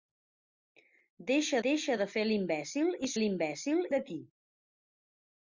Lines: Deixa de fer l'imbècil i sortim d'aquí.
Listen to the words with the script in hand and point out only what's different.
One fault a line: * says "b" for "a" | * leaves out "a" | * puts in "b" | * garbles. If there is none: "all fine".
* puts in "deixa"
* says "l'imbècil" for "sortim"